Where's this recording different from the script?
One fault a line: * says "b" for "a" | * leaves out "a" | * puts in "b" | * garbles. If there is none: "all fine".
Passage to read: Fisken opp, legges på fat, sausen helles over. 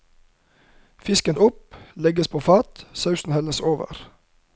all fine